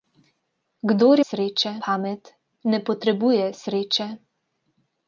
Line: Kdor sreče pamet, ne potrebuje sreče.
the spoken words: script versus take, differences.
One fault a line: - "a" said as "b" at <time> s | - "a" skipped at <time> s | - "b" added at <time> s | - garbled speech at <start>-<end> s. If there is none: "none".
none